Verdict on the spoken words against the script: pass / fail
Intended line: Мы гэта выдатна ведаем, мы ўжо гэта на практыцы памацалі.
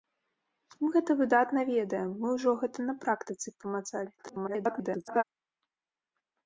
fail